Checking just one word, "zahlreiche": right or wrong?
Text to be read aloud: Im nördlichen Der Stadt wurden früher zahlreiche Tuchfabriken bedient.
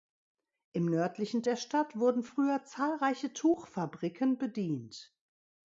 right